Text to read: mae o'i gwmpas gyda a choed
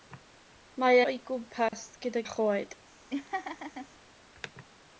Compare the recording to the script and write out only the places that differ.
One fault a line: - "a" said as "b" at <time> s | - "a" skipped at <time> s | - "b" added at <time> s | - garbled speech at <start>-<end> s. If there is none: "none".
none